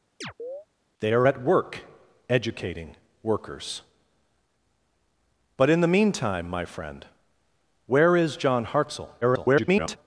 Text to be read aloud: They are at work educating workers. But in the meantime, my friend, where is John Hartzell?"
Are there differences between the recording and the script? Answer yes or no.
yes